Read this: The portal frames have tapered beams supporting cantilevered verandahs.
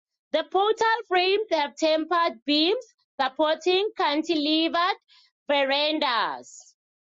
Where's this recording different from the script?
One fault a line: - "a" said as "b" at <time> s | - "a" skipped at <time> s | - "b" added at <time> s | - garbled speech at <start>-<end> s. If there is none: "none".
none